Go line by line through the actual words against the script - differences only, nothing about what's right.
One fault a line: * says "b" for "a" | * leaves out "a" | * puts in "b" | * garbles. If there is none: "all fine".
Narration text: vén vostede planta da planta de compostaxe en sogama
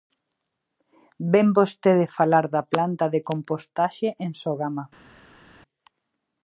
* says "falar" for "planta"